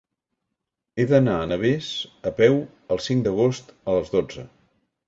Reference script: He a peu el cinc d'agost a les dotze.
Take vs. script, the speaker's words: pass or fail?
fail